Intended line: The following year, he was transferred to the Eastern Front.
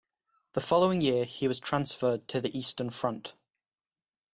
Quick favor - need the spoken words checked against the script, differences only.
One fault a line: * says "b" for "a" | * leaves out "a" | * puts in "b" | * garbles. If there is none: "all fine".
all fine